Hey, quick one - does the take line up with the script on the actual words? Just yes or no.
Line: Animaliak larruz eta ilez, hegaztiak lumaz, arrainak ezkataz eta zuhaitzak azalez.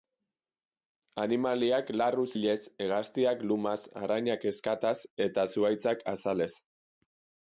no